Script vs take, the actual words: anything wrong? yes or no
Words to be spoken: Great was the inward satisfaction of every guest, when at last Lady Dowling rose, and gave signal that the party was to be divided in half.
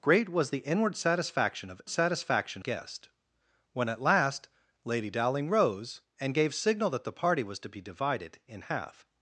yes